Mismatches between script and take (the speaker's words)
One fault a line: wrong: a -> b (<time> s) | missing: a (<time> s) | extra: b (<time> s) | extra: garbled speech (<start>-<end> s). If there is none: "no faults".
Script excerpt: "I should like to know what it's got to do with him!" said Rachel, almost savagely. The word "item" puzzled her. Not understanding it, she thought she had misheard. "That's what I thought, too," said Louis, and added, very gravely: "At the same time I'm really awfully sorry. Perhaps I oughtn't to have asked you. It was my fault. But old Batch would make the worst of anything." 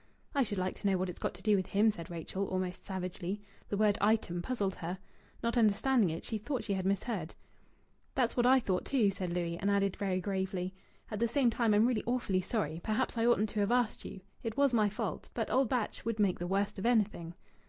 no faults